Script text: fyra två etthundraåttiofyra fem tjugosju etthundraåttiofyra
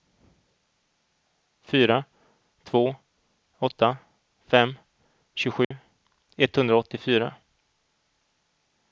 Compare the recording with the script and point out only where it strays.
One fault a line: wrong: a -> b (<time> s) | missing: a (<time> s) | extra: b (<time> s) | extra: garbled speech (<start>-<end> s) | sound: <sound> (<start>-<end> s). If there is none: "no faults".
wrong: etthundraåttiofyra -> åtta (3.6 s)
sound: dropout (5.6-5.7 s)